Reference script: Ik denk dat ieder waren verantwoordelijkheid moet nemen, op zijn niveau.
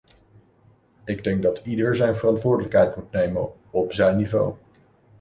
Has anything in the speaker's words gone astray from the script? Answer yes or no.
yes